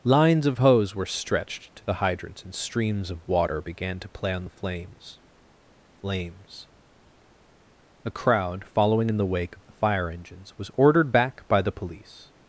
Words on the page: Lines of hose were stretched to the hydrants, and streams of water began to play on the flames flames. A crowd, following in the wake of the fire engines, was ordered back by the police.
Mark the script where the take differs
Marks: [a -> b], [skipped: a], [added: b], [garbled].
Lines of hose were stretched to the hydrants, and streams of water began to play on the flames flames. A crowd, following in the wake of the fire engines, was ordered back by the police.